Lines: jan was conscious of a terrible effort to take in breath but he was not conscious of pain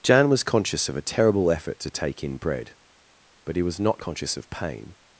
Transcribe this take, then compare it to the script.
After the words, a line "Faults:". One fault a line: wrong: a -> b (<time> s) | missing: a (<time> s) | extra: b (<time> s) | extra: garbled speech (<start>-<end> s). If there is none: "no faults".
jan was conscious of a terrible effort to take in bread but he was not conscious of pain
Faults:
wrong: breath -> bread (2.4 s)